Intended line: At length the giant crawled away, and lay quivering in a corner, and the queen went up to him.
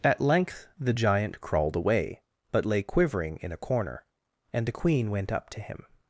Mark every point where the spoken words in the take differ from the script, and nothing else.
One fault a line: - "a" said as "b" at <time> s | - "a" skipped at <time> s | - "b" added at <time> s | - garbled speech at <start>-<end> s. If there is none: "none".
- "and" said as "but" at 2.5 s